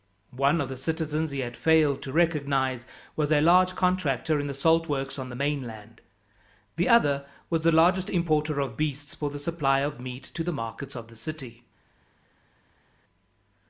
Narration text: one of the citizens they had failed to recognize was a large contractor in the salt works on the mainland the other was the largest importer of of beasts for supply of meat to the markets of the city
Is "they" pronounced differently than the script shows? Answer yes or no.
yes